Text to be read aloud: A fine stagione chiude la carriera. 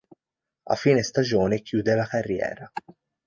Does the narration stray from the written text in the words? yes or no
no